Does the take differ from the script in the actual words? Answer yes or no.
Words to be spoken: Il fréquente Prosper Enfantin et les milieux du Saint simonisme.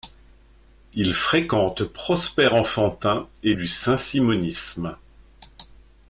yes